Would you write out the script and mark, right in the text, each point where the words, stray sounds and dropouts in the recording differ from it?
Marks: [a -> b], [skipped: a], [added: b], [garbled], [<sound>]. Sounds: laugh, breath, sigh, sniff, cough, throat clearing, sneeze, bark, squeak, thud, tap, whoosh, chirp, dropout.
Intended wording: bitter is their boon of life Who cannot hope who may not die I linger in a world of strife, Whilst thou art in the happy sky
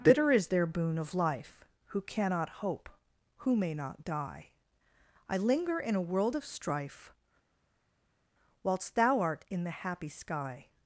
bitter is their boon of life Who cannot hope who may not die I linger in a world of strife, Whilst thou art in the happy sky